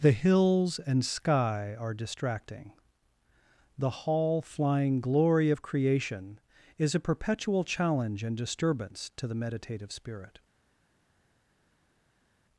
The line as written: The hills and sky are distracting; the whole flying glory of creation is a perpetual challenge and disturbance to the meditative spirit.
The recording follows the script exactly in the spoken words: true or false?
false